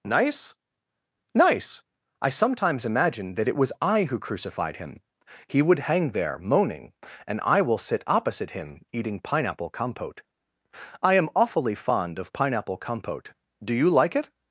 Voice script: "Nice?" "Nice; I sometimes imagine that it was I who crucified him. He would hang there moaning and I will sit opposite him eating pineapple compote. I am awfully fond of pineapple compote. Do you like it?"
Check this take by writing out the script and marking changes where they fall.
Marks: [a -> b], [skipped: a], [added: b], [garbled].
"Nice?" "Nice; I sometimes imagine that it was I who crucified him. He would hang there moaning and I will sit opposite him eating pineapple compote. I am awfully fond of pineapple compote. Do you like it?"